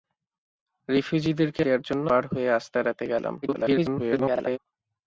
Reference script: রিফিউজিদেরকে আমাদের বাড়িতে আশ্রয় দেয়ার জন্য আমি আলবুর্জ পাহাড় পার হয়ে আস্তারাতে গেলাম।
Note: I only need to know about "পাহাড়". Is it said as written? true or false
false